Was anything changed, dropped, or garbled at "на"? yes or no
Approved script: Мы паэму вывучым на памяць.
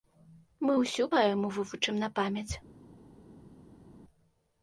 no